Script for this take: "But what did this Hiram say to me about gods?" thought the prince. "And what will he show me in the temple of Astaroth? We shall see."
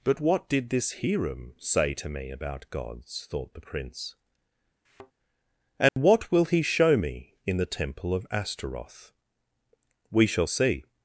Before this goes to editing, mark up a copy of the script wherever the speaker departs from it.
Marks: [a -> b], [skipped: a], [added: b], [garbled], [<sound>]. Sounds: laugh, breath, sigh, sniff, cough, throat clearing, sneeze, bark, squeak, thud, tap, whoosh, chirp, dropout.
"But what did this Hiram say to me about gods?" thought the prince. [thud] "And [dropout] what will he show me in the temple of Astaroth? We shall see."